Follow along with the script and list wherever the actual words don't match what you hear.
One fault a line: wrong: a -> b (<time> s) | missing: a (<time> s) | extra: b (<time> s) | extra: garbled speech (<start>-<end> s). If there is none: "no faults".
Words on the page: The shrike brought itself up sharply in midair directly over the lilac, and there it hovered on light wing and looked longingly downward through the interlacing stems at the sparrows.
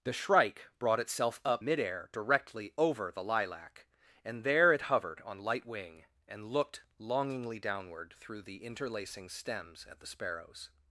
missing: sharply in (1.6 s)